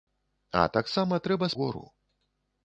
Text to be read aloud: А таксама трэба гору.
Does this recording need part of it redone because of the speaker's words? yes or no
no